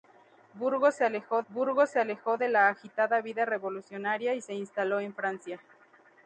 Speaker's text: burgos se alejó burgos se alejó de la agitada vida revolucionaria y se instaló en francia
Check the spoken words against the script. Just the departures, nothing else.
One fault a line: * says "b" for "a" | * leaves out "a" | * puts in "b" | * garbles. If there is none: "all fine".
all fine